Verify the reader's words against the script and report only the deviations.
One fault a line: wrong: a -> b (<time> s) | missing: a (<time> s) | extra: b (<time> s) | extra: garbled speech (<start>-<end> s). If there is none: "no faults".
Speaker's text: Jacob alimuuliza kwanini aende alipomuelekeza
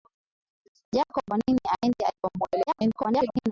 missing: alimuuliza (1.3 s)
extra: garbled speech (2.7-3.5 s)